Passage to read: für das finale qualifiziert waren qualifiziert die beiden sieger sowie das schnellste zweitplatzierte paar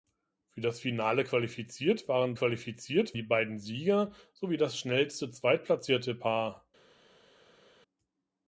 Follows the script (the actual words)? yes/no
yes